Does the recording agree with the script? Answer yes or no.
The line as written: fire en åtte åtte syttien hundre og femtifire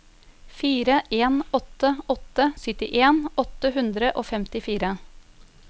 no